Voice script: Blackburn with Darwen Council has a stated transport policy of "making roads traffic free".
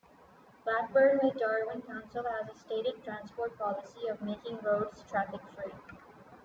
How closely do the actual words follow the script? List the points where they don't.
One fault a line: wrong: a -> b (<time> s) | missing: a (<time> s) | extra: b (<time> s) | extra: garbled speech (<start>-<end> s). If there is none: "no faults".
no faults